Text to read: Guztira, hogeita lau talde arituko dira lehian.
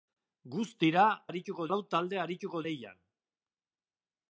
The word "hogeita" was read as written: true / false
false